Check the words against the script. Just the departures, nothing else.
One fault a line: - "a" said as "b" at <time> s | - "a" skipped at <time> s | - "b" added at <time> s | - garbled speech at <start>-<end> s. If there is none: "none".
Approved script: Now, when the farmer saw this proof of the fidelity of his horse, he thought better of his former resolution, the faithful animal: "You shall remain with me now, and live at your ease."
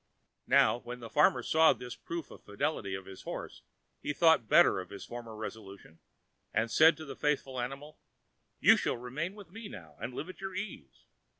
- "and said to" added at 6.5 s